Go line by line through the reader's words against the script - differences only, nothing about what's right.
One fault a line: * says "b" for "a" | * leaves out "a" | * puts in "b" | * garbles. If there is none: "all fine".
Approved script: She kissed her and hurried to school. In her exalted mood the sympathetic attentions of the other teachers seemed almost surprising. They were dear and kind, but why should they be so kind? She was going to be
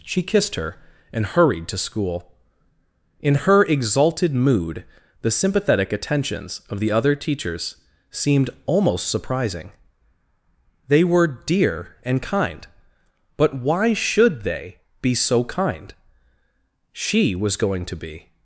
all fine